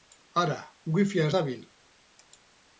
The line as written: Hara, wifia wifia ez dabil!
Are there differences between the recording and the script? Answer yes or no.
yes